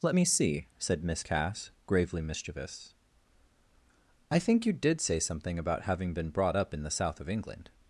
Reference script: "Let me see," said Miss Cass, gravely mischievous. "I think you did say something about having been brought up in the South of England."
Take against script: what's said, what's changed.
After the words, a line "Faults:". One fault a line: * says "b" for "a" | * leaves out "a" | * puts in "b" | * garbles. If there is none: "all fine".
"Let me see," said Miss Cass, gravely mischievous. "I think you did say something about having been brought up in the South of England."
Faults:
all fine